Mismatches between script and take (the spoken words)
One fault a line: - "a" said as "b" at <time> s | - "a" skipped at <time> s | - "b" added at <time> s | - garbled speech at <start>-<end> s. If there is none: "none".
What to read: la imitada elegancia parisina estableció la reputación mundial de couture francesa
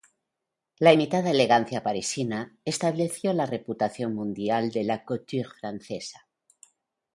- "la" added at 4.8 s